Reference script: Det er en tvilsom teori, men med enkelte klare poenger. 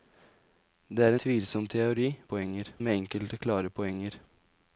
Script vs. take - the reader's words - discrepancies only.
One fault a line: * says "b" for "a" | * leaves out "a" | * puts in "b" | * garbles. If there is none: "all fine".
* leaves out "en"
* says "poenger" for "men"